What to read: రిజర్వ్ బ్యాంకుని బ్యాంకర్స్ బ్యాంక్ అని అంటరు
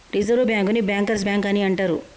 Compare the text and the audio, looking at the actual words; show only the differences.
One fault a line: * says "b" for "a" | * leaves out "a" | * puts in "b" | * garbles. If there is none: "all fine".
all fine